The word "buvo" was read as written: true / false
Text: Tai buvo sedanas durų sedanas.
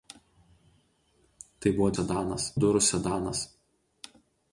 true